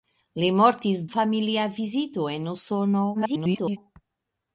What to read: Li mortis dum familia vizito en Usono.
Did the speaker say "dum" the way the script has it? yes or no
no